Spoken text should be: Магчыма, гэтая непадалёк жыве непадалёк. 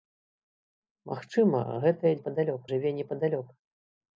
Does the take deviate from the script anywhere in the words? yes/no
no